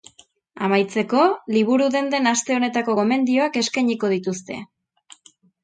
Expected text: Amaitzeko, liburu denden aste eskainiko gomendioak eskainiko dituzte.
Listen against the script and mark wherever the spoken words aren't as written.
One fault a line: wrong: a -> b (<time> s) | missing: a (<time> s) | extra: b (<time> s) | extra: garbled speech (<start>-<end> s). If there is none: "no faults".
wrong: eskainiko -> honetako (2.6 s)